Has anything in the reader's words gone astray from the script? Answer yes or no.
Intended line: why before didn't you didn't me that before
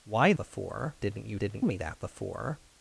no